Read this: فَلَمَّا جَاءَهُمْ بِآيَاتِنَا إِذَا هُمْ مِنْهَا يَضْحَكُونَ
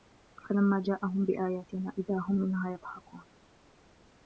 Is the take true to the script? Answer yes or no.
yes